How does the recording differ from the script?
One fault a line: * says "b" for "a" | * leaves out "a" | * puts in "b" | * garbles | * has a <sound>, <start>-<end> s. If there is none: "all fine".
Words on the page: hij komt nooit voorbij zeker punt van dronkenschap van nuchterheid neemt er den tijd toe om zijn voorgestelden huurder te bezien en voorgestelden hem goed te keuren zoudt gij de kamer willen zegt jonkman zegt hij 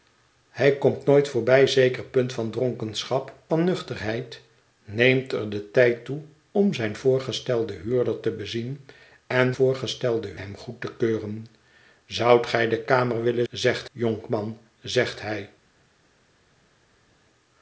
all fine